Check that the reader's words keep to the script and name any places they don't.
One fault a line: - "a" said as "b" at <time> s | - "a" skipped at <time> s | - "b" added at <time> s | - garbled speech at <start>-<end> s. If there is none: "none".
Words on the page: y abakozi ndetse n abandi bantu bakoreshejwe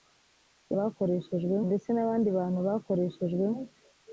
- "abakozi" said as "bakoreshejwe" at 0.8 s